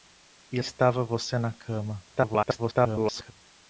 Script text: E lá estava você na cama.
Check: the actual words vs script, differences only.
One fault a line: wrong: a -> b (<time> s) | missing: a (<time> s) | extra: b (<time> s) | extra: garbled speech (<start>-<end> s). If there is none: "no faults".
missing: lá (0.6 s)
extra: garbled speech (2.1-3.3 s)